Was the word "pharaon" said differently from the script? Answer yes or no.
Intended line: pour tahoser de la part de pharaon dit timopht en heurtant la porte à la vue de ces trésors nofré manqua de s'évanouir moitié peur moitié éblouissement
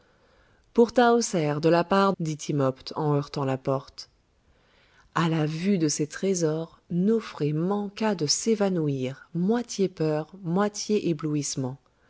yes